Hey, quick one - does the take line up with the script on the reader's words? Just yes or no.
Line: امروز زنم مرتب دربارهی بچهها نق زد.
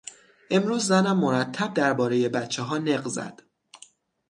yes